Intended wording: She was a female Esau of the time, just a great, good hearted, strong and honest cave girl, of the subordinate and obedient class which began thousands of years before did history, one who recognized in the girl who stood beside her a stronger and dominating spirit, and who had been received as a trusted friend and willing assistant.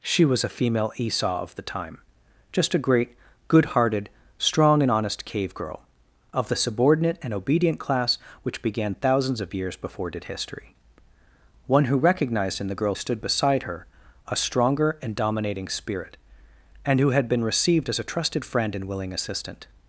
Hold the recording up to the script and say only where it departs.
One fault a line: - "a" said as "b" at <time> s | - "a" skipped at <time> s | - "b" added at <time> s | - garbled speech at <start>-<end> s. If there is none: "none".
- "who" skipped at 12.9 s